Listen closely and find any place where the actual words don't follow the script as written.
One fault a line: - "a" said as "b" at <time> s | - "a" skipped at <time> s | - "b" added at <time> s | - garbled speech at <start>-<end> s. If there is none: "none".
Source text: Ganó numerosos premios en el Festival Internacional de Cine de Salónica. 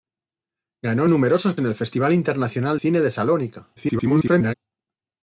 - "premios" skipped at 1.6 s
- "de" skipped at 2.8 s
- garbled speech at 3.8-4.6 s